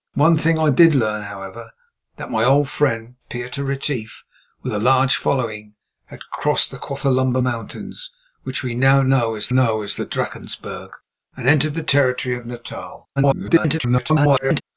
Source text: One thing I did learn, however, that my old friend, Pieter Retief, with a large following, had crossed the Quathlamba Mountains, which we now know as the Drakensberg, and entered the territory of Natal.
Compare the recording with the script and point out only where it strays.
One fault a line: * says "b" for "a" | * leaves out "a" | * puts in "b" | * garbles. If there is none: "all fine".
* puts in "know as"
* garbles